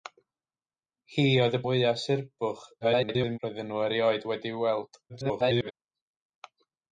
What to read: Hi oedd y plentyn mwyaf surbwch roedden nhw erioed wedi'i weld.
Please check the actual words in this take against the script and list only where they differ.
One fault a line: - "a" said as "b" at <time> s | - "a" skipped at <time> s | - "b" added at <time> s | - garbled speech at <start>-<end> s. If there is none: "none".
- "plentyn" skipped at 1.6 s
- garbled speech at 2.8-3.4 s
- garbled speech at 5.1-5.7 s